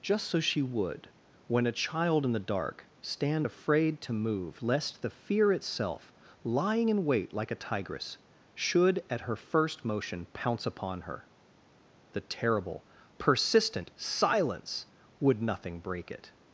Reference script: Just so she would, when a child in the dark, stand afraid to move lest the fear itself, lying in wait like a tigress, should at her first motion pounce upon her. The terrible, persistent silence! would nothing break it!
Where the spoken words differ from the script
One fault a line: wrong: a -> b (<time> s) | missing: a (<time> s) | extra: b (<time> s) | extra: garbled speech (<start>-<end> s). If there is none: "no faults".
no faults